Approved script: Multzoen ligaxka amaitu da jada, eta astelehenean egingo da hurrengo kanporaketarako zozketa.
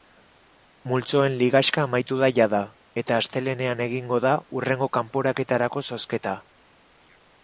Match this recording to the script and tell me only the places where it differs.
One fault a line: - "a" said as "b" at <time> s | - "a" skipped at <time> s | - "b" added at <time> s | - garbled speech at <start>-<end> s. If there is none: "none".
none